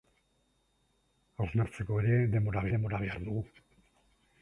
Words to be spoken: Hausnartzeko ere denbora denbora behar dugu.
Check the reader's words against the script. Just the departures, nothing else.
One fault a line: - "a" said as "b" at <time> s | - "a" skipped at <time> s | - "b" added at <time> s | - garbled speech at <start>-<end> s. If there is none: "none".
none